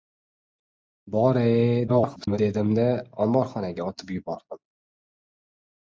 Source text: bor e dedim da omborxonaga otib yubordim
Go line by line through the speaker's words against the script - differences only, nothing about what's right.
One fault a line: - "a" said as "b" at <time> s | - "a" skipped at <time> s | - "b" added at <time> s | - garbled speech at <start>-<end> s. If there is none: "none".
- garbled speech at 1.9-2.4 s